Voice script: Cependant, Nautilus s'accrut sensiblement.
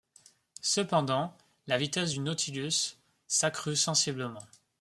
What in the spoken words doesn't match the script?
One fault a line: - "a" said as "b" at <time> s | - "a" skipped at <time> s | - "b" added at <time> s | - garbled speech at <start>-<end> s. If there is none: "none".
- "la vitesse du" added at 1.7 s